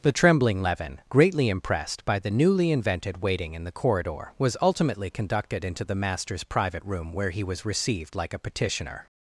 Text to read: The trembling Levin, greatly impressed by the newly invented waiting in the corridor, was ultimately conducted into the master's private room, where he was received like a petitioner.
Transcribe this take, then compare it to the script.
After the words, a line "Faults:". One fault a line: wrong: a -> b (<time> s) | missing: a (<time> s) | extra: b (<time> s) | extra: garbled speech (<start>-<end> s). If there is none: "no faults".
The trembling Levin, greatly impressed by the newly invented waiting in the corridor, was ultimately conducted into the master's private room, where he was received like a petitioner.
Faults:
no faults